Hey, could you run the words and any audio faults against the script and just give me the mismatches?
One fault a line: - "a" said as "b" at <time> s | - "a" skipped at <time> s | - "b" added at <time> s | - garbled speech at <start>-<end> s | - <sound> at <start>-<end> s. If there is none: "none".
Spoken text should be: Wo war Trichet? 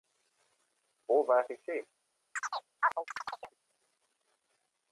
- chirp at 2.4-3.6 s